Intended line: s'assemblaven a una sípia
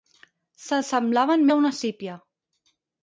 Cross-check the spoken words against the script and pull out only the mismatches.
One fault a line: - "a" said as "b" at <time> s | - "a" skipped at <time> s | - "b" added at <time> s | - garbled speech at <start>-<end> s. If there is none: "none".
none